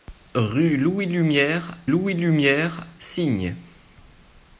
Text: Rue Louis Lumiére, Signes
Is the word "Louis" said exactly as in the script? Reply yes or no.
yes